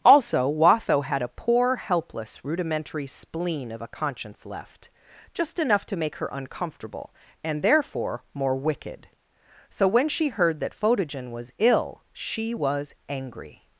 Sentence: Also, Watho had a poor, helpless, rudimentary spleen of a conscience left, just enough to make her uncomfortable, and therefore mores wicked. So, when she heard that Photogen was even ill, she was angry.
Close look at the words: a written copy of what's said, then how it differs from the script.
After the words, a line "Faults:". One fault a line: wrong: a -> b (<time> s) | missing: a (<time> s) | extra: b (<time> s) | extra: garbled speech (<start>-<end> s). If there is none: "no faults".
Also, Watho had a poor, helpless, rudimentary spleen of a conscience left, just enough to make her uncomfortable, and therefore more wicked. So, when she heard that Photogen was ill, she was angry.
Faults:
wrong: mores -> more (8.3 s)
missing: even (11.5 s)